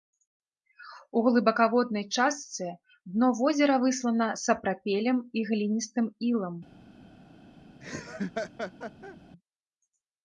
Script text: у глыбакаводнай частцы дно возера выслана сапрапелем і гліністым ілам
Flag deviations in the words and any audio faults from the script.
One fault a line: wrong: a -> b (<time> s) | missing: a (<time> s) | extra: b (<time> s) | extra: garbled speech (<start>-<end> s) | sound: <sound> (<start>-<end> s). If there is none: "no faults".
sound: laugh (7.8-9.2 s)